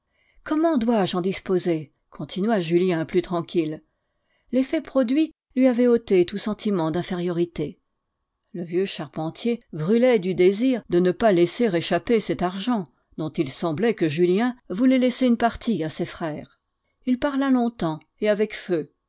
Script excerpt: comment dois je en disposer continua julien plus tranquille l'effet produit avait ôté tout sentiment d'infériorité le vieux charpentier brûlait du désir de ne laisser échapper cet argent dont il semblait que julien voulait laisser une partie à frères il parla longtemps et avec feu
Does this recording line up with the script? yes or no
no